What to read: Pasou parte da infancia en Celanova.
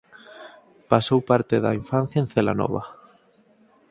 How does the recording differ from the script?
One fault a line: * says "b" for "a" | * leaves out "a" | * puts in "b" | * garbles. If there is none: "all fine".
all fine